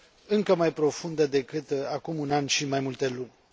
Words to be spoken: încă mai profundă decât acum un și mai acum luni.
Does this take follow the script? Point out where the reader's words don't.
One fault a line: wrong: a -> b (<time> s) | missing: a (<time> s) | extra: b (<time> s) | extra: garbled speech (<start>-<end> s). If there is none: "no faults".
extra: an (2.3 s)
wrong: acum -> multe (2.8 s)